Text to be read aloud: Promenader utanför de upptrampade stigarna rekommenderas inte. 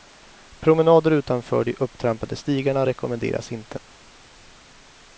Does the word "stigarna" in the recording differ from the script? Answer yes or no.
no